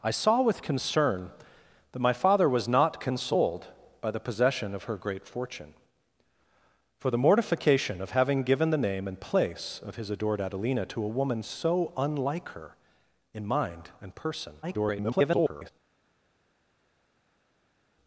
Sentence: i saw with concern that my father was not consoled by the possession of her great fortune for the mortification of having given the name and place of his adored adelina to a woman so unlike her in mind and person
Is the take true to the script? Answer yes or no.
no